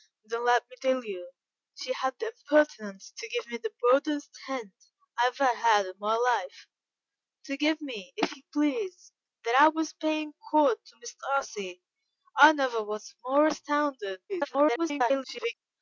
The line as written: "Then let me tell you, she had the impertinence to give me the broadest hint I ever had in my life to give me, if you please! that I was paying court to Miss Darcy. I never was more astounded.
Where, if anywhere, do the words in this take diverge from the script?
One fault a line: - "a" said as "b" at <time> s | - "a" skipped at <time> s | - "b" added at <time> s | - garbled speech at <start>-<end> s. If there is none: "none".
- garbled speech at 14.3-15.5 s